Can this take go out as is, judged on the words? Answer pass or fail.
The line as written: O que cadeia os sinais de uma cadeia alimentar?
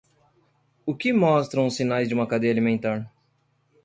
fail